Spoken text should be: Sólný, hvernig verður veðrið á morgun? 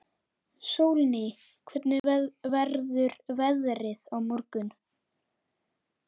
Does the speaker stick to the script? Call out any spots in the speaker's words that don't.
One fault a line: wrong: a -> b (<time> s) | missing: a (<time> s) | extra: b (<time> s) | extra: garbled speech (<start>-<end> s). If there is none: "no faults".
no faults